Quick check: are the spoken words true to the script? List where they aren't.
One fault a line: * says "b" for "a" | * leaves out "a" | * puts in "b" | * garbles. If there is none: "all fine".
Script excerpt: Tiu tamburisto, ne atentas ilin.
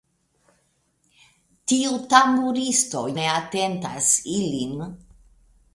all fine